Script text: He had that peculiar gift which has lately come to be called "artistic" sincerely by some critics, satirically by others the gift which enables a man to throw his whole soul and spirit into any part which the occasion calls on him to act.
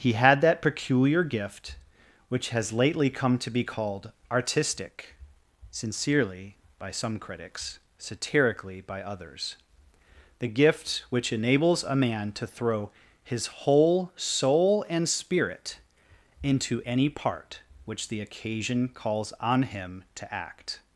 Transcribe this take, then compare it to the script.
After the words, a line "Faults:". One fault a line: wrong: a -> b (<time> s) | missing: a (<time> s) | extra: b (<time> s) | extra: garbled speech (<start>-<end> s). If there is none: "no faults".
He had that peculiar gift which has lately come to be called "artistic" sincerely by some critics, satirically by others the gift which enables a man to throw his whole soul and spirit into any part which the occasion calls on him to act.
Faults:
no faults